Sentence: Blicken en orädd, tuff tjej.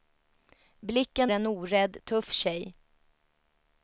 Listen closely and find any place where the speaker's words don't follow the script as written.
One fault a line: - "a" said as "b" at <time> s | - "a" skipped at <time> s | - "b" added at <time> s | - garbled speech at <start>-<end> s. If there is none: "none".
none